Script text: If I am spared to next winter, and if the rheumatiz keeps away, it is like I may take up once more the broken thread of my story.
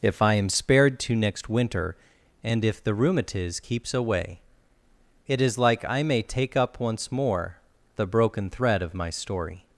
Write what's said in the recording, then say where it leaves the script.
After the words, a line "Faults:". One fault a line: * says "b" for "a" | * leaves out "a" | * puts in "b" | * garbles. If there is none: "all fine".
If I am spared to next winter, and if the rheumatiz keeps away, it is like I may take up once more the broken thread of my story.
Faults:
all fine